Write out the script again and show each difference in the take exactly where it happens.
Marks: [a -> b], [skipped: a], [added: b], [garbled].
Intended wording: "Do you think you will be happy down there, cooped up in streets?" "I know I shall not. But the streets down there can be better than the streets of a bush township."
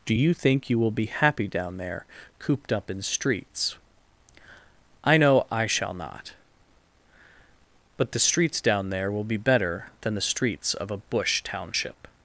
"Do you think you will be happy down there, cooped up in streets?" "I know I shall not. But the streets down there [can -> will] be better than the streets of a bush township."